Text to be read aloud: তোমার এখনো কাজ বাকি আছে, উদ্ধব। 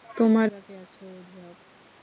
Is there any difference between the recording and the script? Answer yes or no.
yes